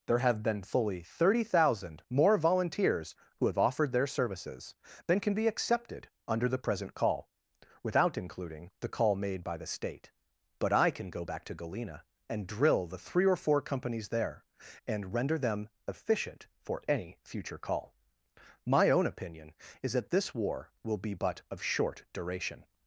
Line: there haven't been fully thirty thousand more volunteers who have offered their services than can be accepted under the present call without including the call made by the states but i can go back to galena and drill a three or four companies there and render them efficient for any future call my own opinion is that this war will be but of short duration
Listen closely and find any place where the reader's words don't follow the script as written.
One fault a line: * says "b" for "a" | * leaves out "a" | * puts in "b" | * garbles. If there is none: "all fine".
* says "have" for "haven't"
* says "state" for "states"
* says "the" for "a"